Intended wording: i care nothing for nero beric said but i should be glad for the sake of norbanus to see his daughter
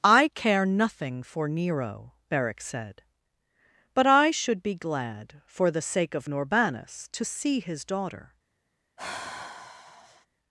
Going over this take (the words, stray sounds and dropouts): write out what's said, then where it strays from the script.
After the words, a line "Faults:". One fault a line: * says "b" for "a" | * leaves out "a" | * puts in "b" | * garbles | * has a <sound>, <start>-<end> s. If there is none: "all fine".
i care nothing for nero beric said but i should be glad for the sake of norbanus to see his daughter
Faults:
* has a sigh, 9.0-10.3 s